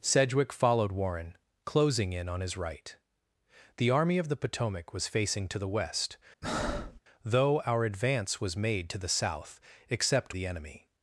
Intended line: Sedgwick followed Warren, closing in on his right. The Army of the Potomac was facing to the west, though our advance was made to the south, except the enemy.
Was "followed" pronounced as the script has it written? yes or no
yes